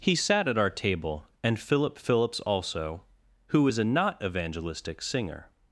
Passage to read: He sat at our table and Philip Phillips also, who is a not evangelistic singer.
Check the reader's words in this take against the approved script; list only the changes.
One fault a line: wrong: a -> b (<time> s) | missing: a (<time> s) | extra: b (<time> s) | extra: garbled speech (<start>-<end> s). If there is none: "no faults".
no faults